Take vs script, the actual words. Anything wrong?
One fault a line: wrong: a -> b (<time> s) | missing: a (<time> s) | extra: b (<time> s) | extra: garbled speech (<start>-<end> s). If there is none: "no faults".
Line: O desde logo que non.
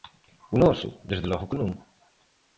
extra: noso (0.6 s)